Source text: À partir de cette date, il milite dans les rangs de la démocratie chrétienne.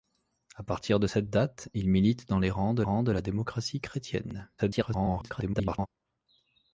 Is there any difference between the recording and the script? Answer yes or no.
yes